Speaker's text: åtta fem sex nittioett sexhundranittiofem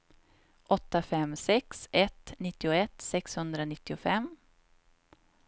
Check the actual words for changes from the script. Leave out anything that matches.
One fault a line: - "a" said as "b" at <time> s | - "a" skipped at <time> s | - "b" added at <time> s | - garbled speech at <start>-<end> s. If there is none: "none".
- "ett" added at 1.9 s